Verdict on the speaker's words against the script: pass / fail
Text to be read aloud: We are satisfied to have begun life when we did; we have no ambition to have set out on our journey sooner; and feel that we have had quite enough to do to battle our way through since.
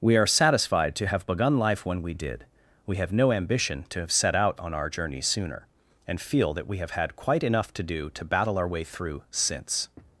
pass